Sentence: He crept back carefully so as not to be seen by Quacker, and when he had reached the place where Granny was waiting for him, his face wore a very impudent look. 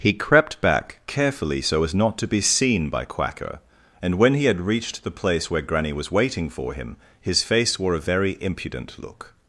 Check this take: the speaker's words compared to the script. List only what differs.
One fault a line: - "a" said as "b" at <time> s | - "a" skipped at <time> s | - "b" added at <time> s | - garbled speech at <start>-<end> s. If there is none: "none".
none